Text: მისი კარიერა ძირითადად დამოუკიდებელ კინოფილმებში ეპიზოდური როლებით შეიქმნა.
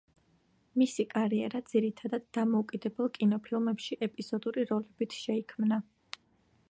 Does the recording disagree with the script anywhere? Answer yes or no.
no